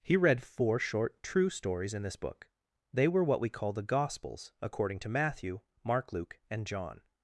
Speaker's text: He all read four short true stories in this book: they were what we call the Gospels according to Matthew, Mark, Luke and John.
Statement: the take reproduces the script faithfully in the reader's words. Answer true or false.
false